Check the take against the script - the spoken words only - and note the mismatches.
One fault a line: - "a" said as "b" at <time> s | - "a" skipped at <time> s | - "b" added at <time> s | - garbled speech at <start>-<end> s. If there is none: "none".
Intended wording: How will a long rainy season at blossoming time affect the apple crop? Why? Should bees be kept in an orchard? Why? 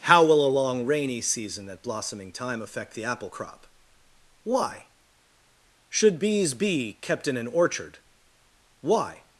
none